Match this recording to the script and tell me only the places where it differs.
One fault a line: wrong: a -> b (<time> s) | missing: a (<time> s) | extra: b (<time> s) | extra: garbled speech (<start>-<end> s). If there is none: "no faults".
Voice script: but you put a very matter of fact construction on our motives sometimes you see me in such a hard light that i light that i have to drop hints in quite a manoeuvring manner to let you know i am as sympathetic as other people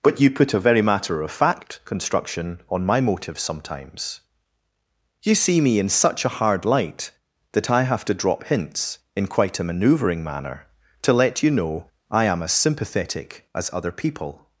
wrong: our -> my (2.9 s)
missing: light that i (7.8 s)